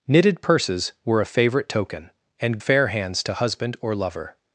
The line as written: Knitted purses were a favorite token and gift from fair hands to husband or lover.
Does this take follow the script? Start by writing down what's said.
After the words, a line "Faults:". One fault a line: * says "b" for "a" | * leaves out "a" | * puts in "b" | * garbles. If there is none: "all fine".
Knitted purses were a favorite token and fair hands to husband or lover.
Faults:
* leaves out "gift from"